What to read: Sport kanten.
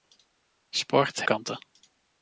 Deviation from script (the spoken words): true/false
false